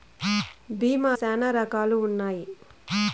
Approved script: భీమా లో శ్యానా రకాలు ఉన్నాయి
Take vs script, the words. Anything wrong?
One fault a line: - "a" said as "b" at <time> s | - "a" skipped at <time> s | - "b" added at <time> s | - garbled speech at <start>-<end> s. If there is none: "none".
- "లో" skipped at 1.2 s